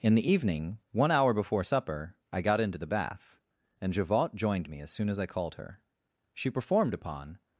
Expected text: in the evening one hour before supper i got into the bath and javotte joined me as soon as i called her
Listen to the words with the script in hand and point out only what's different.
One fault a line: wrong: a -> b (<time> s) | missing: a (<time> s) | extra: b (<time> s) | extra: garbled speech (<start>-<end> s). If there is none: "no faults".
extra: she performed upon (6.3 s)